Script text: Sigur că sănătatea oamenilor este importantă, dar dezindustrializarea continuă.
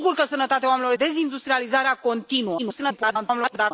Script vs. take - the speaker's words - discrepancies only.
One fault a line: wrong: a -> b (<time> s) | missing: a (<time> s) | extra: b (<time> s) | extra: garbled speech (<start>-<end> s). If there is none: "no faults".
missing: este importantă dar (0.9 s)
extra: garbled speech (2.6-3.7 s)